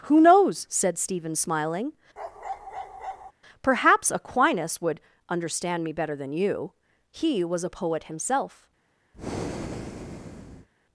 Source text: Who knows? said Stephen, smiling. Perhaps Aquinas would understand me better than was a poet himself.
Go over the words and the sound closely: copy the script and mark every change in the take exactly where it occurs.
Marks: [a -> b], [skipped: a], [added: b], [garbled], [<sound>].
Who knows? said Stephen, smiling. [bark] Perhaps Aquinas would understand me better than [added: you He] was a poet himself. [breath]